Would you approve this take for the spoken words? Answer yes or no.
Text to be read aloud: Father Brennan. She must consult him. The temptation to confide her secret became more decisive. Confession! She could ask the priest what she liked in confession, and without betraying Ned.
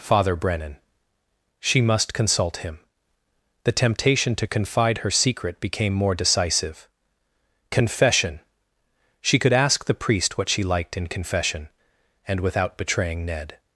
yes